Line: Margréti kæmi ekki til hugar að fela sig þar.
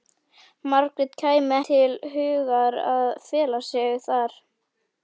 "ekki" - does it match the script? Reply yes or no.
no